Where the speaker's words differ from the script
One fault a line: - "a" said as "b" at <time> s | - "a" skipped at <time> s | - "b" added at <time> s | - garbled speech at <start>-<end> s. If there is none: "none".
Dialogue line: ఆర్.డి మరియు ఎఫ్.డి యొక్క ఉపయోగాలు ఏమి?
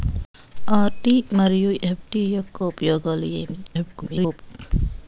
- garbled speech at 3.7-4.4 s